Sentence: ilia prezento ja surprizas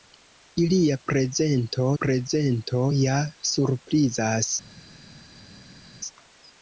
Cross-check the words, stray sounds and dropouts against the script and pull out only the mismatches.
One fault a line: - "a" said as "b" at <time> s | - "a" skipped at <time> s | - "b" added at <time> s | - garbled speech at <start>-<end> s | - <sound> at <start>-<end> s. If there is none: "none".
- "prezento" added at 2.0 s